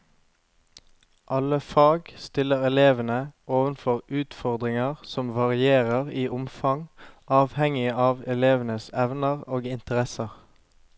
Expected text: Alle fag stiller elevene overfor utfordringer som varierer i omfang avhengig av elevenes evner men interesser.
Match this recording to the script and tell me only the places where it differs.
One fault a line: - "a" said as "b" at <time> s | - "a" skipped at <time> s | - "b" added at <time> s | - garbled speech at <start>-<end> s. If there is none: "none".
- "men" said as "og" at 9.5 s